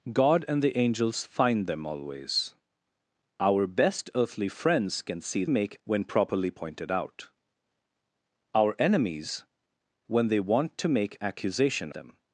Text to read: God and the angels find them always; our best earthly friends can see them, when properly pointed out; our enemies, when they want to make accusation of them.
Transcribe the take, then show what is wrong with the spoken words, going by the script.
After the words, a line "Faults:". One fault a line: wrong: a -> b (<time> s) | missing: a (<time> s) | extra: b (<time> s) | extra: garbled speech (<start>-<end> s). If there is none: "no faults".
God and the angels find them always; our best earthly friends can see make, when properly pointed out; our enemies, when they want to make accusation them.
Faults:
wrong: them -> make (5.5 s)
missing: of (11.9 s)